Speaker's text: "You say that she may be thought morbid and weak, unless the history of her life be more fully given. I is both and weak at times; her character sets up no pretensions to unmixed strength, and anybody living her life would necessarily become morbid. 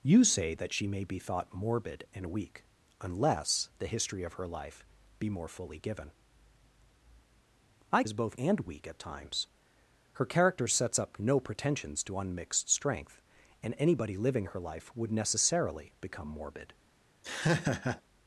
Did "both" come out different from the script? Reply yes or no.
no